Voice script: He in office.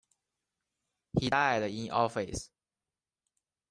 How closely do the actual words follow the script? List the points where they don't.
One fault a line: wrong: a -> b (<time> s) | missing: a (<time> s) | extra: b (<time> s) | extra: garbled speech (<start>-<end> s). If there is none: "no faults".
extra: died (1.3 s)